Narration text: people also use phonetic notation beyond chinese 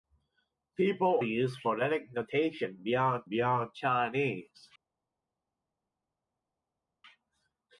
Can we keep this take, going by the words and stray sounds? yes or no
no